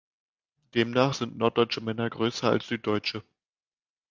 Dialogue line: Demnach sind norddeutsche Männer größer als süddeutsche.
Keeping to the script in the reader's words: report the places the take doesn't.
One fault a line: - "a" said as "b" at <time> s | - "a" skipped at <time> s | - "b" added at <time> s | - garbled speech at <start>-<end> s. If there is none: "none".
none